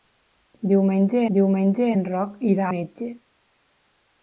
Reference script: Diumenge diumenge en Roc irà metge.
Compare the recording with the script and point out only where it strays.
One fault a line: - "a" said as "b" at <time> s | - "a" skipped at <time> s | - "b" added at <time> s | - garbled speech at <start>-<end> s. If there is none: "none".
none